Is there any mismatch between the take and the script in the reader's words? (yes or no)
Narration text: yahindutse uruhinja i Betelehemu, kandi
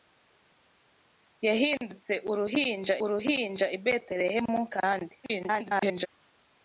yes